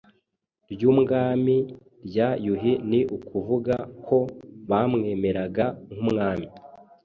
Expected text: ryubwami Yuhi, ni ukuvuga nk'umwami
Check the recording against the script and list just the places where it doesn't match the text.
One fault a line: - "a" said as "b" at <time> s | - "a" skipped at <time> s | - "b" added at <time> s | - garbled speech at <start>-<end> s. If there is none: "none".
- "rya" added at 2.1 s
- "ko bamwemeraga" added at 4.1 s